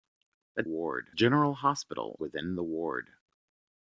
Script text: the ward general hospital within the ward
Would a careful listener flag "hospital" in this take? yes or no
no